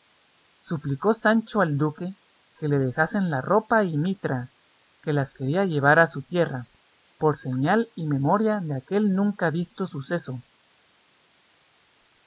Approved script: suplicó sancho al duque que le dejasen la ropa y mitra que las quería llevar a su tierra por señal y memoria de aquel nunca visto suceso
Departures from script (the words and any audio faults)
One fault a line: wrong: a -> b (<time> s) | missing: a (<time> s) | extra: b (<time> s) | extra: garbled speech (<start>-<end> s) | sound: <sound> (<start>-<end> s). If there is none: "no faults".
no faults